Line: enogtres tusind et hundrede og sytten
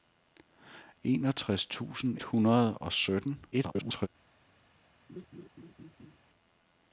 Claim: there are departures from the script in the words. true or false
true